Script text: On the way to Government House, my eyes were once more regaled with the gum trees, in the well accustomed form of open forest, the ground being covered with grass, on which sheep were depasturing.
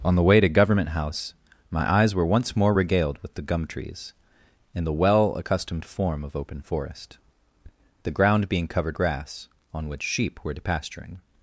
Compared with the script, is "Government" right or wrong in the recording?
right